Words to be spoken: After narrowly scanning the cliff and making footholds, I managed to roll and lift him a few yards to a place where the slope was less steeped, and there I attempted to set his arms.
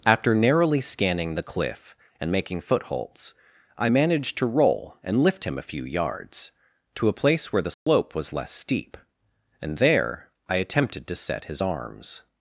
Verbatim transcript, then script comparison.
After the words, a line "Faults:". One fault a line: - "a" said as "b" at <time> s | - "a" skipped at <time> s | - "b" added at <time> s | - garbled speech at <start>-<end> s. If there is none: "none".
After narrowly scanning the cliff and making footholds, I managed to roll and lift him a few yards to a place where the slope was less steep, and there I attempted to set his arms.
Faults:
- "steeped" said as "steep" at 8.5 s